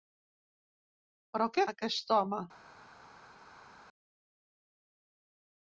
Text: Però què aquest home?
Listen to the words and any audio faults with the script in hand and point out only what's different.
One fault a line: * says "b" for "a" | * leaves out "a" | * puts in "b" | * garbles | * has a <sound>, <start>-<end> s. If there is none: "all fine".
all fine